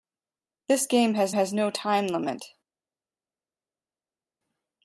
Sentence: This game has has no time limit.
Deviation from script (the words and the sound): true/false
false